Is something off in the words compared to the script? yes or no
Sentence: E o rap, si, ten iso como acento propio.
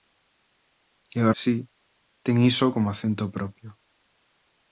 yes